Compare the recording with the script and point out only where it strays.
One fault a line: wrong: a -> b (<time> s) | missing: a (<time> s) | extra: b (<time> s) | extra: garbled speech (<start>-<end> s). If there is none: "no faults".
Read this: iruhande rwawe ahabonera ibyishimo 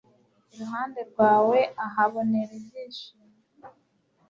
no faults